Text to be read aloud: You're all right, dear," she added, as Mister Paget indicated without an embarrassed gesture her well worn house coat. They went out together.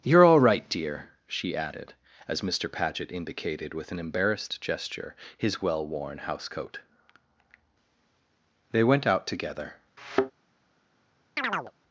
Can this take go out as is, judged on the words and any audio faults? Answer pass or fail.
fail